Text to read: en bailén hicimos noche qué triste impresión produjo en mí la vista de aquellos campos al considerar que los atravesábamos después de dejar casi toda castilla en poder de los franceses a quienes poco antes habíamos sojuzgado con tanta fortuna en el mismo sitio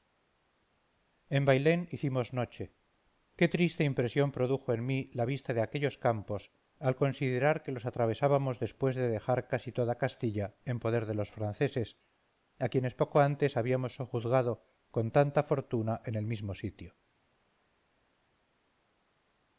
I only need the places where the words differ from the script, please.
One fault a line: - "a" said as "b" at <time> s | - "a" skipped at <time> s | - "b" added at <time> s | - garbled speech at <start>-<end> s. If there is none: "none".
none